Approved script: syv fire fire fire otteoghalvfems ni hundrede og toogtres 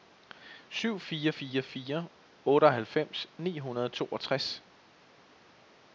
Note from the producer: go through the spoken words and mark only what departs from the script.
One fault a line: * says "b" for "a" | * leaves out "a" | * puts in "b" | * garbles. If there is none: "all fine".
all fine